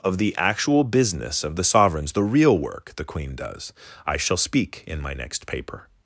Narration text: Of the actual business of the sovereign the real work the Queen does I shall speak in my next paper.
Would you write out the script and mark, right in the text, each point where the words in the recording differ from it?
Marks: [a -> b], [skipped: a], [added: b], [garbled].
Of the actual business of the [sovereign -> sovereigns] the real work the Queen does I shall speak in my next paper.